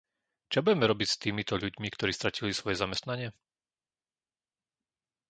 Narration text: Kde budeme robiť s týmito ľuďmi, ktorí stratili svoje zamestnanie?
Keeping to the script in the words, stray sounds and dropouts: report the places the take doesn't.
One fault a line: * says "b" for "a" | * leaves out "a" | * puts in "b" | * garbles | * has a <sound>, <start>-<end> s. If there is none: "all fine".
* says "Čo" for "Kde"